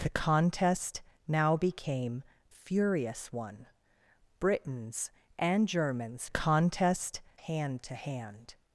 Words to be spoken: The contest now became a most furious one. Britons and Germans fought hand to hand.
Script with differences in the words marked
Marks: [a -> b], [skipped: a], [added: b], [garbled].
The contest now became [skipped: a most] furious one. Britons and Germans [fought -> contest] hand to hand.